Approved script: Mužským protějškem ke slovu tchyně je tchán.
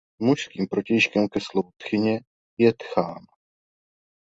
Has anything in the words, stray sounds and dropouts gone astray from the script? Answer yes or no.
no